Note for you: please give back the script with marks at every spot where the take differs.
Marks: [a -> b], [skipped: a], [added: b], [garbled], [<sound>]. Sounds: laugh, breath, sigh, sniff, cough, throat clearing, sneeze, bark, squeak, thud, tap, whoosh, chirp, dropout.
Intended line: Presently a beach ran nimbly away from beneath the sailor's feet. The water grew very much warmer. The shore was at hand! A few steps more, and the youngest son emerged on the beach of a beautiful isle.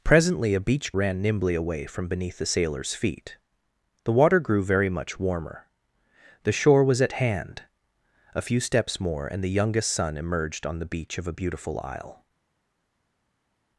Presently a beach ran nimbly away from beneath the sailor's feet. The water grew very much warmer. The shore was at hand! A few steps more, and the youngest son emerged on the beach of a beautiful isle.